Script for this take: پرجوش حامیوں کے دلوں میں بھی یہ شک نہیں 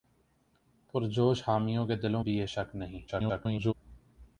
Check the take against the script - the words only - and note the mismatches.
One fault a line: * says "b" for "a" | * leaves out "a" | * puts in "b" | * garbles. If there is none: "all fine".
* leaves out "میں"
* garbles